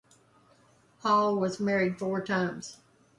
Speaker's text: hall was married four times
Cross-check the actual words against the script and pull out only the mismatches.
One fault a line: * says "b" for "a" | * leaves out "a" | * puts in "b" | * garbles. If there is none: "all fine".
all fine